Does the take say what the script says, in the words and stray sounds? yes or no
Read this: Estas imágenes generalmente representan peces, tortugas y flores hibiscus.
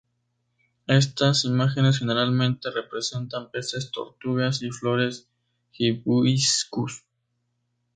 yes